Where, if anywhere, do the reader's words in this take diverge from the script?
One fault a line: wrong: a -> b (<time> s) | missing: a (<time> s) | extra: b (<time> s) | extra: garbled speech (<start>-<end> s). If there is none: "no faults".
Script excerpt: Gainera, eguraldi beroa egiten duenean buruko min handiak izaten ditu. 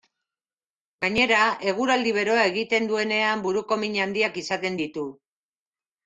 no faults